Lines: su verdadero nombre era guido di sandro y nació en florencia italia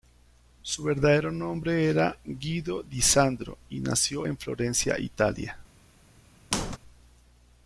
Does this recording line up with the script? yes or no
yes